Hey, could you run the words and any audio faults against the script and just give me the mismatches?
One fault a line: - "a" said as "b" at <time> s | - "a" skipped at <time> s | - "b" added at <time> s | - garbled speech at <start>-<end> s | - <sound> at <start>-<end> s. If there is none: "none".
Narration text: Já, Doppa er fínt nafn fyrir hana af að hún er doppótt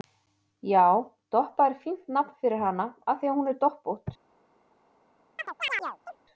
- "því" added at 3.2 s
- chirp at 5.4-6.2 s